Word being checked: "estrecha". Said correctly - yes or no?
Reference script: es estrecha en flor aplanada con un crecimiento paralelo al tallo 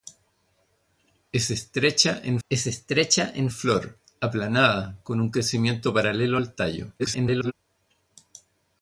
yes